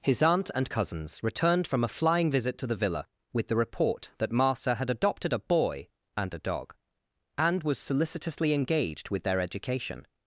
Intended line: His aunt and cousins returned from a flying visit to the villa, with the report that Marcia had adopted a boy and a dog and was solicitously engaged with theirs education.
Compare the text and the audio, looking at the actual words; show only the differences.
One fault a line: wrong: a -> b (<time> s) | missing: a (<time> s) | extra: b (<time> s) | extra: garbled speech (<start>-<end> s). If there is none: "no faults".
wrong: theirs -> their (9.2 s)